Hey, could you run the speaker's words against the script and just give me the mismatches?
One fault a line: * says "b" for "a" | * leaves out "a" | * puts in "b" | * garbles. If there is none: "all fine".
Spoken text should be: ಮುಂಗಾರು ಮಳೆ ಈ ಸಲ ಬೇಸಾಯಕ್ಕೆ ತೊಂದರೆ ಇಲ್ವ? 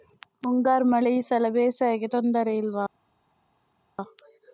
all fine